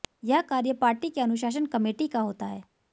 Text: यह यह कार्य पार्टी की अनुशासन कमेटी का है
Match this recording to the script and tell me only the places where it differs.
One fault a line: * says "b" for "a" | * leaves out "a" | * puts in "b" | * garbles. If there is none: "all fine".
* leaves out "यह"
* puts in "होता"